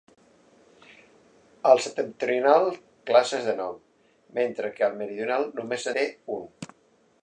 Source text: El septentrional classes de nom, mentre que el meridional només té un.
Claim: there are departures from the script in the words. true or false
false